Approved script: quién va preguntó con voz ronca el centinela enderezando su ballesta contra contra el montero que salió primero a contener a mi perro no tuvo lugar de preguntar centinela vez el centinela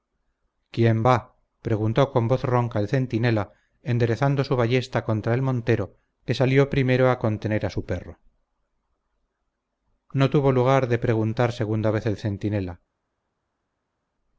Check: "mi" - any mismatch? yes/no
yes